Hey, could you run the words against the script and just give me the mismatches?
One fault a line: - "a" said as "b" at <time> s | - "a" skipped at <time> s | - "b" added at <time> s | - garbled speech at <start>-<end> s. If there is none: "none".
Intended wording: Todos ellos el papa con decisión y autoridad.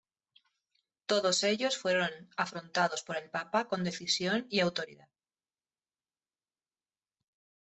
- "fueron afrontados por" added at 1.8 s